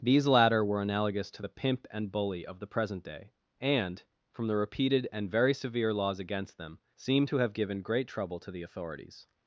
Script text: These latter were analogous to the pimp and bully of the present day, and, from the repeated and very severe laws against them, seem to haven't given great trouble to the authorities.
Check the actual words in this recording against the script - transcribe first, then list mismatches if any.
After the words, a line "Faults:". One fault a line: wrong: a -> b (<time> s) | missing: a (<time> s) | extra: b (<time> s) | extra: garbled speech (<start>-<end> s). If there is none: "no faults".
These latter were analogous to the pimp and bully of the present day, and, from the repeated and very severe laws against them, seem to have given great trouble to the authorities.
Faults:
wrong: haven't -> have (7.4 s)